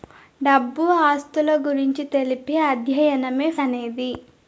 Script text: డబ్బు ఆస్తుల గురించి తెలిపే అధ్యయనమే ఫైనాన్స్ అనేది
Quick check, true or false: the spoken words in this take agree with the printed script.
false